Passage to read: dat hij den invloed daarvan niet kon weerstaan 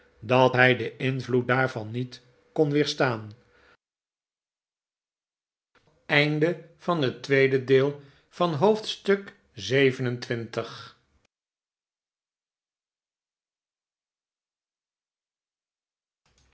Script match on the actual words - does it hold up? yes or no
yes